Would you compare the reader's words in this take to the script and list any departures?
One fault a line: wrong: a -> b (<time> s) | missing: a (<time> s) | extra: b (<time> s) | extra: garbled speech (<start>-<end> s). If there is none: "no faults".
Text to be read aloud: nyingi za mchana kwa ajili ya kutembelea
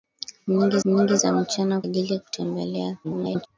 extra: nyingi (0.8 s)
missing: kwa (1.8 s)
extra: garbled speech (3.0-3.5 s)